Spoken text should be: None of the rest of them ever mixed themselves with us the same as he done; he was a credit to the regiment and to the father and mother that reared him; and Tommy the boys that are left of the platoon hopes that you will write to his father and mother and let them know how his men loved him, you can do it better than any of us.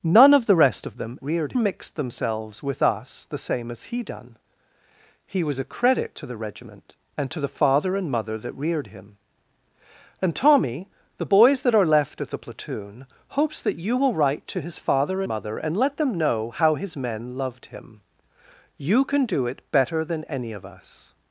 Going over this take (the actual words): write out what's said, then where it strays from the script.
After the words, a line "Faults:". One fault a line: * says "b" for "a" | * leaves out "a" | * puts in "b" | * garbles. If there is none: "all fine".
None of the rest of them reared mixed themselves with us the same as he done; he was a credit to the regiment and to the father and mother that reared him; and Tommy the boys that are left of the platoon hopes that you will write to his father mother and let them know how his men loved him, you can do it better than any of us.
Faults:
* says "reared" for "ever"
* leaves out "and"